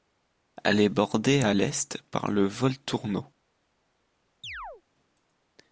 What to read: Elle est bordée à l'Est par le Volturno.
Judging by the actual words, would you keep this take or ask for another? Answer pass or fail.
pass